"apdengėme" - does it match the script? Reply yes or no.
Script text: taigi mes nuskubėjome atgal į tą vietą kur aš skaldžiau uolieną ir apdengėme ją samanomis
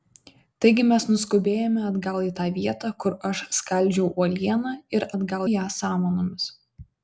no